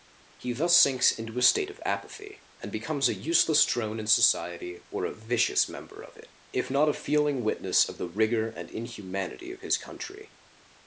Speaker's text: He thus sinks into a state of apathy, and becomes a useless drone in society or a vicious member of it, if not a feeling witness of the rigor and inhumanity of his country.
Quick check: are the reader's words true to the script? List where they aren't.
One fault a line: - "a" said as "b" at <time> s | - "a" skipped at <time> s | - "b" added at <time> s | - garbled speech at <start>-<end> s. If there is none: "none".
none